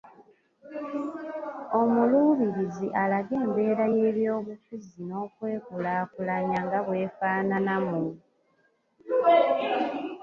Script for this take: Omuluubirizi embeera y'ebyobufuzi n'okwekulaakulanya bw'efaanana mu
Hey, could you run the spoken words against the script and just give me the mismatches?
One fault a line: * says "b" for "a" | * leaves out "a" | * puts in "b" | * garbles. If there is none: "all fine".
* puts in "alage"
* puts in "nga"